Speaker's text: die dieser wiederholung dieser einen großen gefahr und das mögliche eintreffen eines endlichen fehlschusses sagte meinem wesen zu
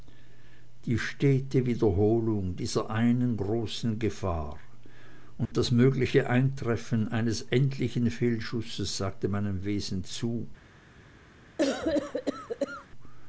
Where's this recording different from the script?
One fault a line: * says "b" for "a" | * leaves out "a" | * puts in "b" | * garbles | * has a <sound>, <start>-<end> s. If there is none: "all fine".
* says "stete" for "dieser"
* has a dropout, 5.5-5.5 s
* has a cough, 11.6-12.9 s